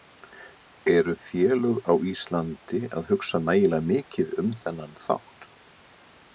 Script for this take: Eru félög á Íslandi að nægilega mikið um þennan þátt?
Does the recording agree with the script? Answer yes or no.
no